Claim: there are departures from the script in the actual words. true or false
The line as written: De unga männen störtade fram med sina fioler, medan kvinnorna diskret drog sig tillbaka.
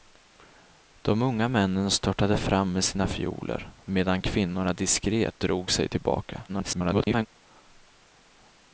true